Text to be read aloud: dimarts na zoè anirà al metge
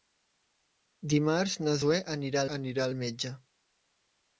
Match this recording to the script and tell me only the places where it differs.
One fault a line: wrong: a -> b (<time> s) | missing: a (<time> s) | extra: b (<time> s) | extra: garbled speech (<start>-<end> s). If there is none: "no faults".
extra: anirà (2.6 s)